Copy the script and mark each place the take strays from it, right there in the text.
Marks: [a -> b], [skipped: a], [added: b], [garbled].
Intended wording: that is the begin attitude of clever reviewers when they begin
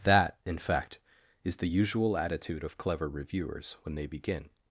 that [added: in fact] is the [begin -> usual] attitude of clever reviewers when they begin